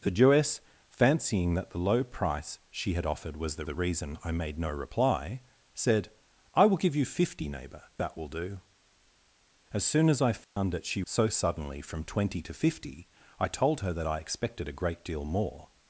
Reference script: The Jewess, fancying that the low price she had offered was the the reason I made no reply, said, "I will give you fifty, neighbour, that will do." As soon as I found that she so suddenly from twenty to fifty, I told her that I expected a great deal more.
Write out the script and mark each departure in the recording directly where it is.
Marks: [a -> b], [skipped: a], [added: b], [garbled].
The Jewess, fancying that the low price she had offered was the the reason I made no reply, said, "I will give you fifty, neighbour, that will do." As soon as I found that she so suddenly from twenty to fifty, I told her that I expected a great deal more.